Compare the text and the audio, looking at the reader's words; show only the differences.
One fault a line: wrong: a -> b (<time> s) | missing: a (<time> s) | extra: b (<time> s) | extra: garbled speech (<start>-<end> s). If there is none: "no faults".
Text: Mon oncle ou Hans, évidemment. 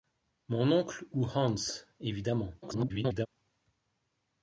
extra: garbled speech (2.6-3.3 s)